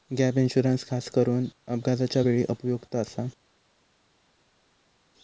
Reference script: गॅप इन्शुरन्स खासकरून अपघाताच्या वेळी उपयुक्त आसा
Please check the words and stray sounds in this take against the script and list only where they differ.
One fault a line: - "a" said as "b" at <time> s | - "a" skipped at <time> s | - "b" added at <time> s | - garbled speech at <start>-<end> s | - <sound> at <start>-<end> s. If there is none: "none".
none